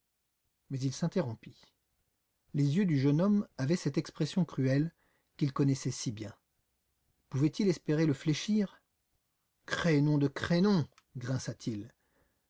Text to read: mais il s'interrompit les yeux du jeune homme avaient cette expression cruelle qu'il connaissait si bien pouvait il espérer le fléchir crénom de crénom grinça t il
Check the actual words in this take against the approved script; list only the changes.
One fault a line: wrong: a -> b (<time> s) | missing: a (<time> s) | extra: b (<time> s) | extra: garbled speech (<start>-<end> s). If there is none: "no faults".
no faults